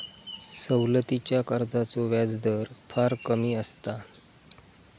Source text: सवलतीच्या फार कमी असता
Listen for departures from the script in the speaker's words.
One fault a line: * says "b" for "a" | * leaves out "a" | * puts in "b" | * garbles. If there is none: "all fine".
* puts in "कर्जाचो व्याजदर"